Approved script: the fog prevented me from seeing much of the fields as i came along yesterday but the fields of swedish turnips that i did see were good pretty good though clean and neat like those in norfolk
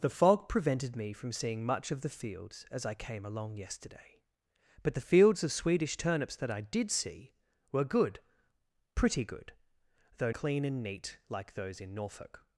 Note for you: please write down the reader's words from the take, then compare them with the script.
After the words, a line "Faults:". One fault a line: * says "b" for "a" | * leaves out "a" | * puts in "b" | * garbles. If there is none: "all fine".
the fog prevented me from seeing much of the fields as i came along yesterday but the fields of swedish turnips that i did see were good pretty good though clean and neat like those in norfolk
Faults:
all fine